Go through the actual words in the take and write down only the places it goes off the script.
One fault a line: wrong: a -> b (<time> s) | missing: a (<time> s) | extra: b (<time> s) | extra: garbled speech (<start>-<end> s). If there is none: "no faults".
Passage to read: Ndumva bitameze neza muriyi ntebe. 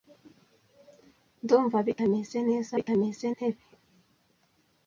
wrong: muriyi -> bitameze (2.8 s)